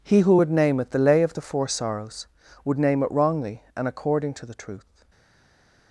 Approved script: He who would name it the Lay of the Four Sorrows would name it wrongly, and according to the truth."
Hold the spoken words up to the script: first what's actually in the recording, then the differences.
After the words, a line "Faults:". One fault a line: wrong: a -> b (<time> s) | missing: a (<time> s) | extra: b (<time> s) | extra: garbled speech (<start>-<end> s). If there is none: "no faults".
He who would name it the Lay of the Four Sorrows would name it wrongly, and according to the truth."
Faults:
no faults